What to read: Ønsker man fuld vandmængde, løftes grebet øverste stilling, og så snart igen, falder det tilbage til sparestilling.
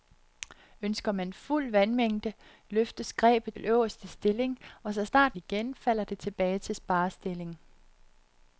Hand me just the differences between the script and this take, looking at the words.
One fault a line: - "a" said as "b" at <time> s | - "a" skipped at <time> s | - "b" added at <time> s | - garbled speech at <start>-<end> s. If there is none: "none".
none